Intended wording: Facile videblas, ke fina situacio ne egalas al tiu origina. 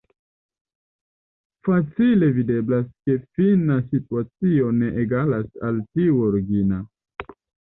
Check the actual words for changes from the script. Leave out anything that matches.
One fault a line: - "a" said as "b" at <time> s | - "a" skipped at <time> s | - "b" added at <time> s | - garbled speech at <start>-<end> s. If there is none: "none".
none